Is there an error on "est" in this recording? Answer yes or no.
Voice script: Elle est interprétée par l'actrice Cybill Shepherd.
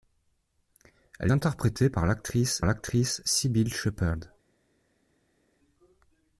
yes